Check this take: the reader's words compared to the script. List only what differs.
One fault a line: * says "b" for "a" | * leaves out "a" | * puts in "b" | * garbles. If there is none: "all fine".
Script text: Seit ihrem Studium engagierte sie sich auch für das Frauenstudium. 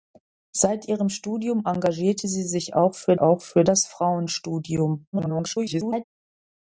* puts in "auch für"
* garbles